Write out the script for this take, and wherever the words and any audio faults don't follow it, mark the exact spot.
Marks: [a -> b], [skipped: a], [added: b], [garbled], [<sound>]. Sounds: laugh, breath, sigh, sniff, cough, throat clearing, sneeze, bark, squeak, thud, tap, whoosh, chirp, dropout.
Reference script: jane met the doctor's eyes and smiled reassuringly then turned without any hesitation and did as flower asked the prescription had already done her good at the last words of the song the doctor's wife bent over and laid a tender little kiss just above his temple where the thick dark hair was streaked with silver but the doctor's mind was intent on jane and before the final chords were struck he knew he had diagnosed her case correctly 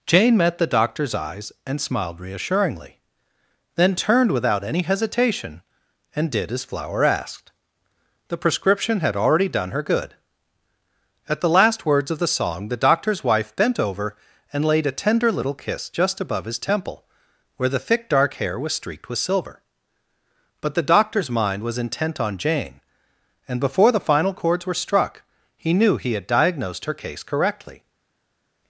jane met the doctor's eyes and smiled reassuringly then turned without any hesitation and did as flower asked the prescription had already done her good at the last words of the song the doctor's wife bent over and laid a tender little kiss just above his temple where the thick dark hair was streaked with silver but the doctor's mind was intent on jane and before the final chords were struck he knew he had diagnosed her case correctly